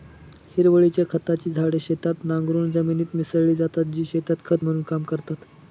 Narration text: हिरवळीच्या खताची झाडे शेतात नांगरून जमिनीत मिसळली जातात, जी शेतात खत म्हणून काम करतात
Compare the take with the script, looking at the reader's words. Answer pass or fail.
pass